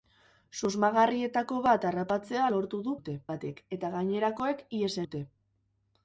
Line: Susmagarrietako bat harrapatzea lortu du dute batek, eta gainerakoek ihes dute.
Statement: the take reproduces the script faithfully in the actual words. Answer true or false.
true